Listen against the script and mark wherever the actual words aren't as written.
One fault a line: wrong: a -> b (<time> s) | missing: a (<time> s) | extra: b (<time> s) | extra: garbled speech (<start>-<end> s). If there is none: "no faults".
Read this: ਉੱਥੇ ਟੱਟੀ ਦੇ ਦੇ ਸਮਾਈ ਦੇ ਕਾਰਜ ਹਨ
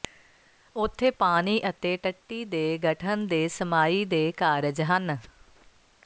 extra: ਪਾਣੀ ਅਤੇ (1.1 s)
extra: ਗਠਨ (2.8 s)